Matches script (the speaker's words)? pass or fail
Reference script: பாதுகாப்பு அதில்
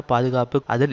pass